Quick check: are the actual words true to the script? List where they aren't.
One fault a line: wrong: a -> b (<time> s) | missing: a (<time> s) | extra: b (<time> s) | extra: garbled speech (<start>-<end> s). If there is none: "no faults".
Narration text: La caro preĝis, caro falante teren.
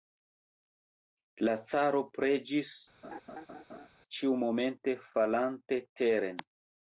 wrong: caro -> ĉiumomente (4.2 s)